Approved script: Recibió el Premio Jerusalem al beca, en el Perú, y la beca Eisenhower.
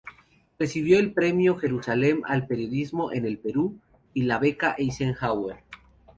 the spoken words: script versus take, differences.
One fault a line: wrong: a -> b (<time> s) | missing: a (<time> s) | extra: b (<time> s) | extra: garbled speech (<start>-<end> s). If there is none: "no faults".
wrong: beca -> periodismo (2.5 s)